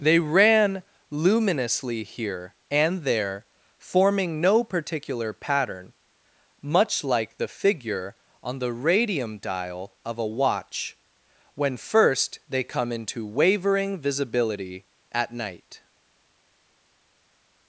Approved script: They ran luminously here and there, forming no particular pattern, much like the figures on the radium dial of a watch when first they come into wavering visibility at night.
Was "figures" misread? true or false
true